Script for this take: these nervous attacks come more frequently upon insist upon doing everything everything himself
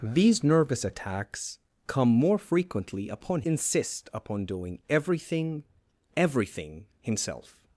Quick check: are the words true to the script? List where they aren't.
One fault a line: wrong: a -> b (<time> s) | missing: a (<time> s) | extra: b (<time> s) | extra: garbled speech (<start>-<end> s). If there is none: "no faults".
no faults